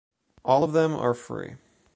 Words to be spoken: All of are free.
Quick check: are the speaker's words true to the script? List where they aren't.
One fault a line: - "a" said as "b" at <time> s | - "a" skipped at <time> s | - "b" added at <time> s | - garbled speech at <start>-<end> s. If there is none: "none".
- "them" added at 0.7 s